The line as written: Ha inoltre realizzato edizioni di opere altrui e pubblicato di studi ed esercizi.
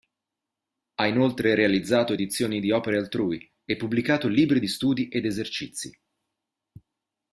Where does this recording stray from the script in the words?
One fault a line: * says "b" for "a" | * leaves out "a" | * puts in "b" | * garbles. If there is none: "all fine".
* puts in "libri"